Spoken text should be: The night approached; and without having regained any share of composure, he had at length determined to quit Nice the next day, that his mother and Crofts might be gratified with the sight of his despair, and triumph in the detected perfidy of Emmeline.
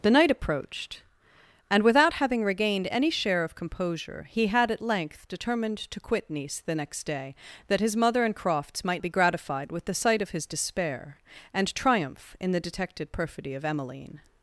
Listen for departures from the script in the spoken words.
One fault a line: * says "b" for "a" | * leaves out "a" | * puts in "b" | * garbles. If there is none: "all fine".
all fine